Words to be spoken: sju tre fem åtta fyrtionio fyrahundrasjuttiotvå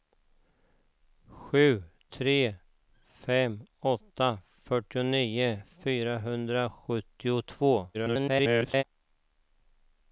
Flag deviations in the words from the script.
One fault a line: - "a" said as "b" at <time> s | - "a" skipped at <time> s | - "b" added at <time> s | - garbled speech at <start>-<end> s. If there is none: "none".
- garbled speech at 7.9-8.8 s